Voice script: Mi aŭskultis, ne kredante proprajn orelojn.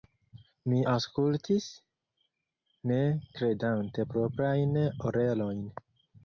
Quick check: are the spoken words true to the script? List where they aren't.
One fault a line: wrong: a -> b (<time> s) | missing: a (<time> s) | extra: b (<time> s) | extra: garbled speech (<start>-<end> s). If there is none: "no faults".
no faults